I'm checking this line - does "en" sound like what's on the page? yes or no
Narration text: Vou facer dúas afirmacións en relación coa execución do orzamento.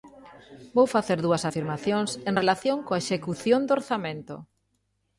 yes